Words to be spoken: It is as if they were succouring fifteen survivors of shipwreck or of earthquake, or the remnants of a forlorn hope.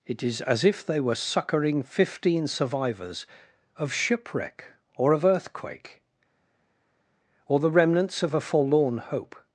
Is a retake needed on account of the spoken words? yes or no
no